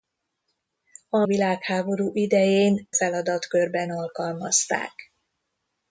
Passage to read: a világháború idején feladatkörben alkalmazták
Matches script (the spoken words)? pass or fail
pass